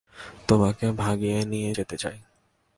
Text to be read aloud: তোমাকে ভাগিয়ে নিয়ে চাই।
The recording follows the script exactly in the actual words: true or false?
false